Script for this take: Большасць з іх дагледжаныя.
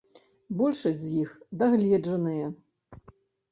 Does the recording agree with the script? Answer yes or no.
yes